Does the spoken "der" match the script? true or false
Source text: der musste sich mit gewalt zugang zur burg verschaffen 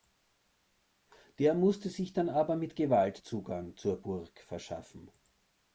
true